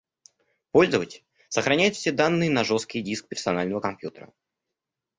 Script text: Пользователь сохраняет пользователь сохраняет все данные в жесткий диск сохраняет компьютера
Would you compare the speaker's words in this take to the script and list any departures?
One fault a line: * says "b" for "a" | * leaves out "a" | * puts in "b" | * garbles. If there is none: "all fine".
* leaves out "пользователь сохраняет"
* says "на" for "в"
* says "персонального" for "сохраняет"